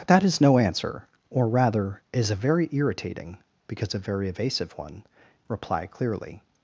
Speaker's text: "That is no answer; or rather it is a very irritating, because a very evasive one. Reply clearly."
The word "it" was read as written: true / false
false